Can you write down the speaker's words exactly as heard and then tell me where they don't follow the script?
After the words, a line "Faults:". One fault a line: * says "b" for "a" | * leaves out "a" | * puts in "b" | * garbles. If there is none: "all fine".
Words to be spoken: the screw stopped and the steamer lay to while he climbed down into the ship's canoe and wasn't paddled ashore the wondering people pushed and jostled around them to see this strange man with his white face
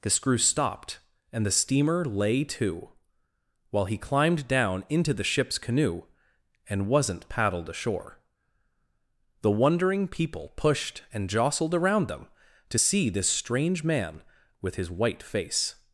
the screw stopped and the steamer lay to while he climbed down into the ship's canoe and wasn't paddled ashore the wondering people pushed and jostled around them to see this strange man with his white face
Faults:
all fine